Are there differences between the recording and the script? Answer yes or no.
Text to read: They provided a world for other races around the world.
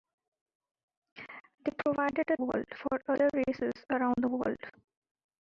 no